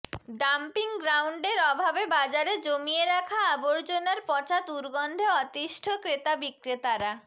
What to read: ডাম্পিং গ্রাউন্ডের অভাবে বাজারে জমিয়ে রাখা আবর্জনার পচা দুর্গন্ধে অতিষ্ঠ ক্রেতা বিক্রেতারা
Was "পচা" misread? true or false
false